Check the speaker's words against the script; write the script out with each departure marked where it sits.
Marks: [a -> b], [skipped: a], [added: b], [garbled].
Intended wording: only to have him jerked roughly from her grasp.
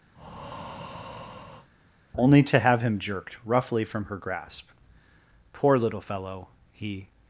only to have him jerked roughly from her grasp. [added: Poor little fellow he]